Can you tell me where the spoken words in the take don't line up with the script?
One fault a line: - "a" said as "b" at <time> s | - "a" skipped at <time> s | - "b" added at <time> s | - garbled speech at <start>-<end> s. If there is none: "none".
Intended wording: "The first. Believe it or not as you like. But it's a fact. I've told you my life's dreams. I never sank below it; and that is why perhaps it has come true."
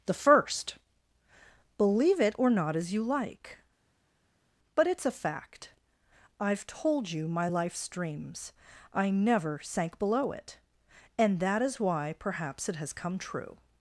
none